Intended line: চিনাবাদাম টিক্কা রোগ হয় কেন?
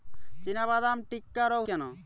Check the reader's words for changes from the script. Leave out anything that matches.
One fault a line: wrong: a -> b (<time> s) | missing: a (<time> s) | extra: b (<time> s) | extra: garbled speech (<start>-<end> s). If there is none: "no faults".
missing: হয় (1.6 s)